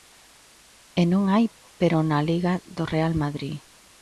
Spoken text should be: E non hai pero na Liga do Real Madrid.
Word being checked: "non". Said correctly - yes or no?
yes